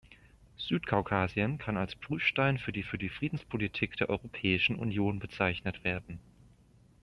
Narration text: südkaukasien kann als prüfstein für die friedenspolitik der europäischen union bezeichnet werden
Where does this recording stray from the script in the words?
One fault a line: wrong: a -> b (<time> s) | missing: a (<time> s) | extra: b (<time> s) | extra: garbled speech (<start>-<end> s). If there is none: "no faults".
extra: für die (2.8 s)